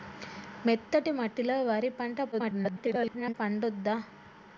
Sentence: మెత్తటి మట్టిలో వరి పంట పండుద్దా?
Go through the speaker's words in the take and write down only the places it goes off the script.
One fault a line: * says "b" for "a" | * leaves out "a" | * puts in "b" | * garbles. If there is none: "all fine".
* garbles